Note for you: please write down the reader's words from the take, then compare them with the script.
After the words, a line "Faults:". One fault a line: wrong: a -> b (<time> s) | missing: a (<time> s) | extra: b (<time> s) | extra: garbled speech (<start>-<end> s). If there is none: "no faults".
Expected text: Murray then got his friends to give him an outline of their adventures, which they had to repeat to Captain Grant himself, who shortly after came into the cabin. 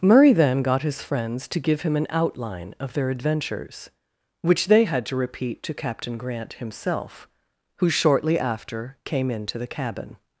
Murray then got his friends to give him an outline of their adventures, which they had to repeat to Captain Grant himself, who shortly after came into the cabin.
Faults:
no faults